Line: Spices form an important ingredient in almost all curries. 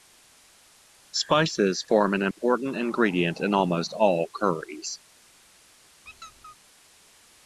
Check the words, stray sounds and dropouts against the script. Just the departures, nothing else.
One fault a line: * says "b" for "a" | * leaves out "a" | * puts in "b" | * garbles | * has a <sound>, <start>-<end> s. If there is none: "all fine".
* has a dropout, 2.3-2.4 s
* has a squeak, 6.0-6.6 s